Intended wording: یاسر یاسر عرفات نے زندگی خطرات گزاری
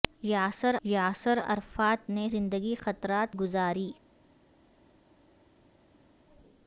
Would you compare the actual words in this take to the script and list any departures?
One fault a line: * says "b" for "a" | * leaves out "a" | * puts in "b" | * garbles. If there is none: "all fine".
all fine